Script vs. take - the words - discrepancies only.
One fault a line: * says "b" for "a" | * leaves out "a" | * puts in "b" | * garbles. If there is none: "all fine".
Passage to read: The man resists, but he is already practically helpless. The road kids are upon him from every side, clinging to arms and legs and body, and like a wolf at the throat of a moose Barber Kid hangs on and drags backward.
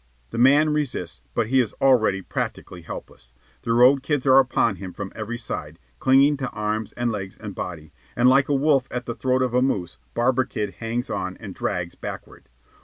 all fine